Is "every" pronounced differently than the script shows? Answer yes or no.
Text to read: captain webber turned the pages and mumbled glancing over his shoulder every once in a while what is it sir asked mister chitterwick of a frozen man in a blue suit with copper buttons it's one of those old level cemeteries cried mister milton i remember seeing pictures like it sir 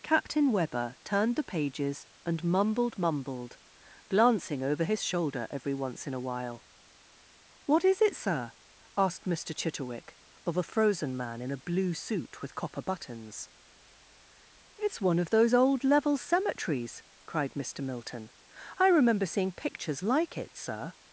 no